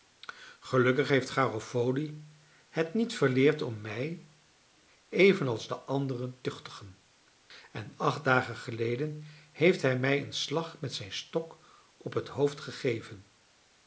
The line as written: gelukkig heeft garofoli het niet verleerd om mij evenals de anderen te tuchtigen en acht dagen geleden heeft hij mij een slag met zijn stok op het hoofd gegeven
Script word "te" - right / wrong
wrong